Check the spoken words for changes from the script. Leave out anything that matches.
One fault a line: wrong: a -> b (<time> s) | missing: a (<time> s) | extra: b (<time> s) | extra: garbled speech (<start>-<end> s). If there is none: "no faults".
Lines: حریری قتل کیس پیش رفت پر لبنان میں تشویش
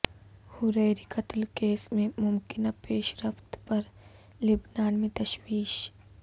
extra: میں ممکنہ (1.9 s)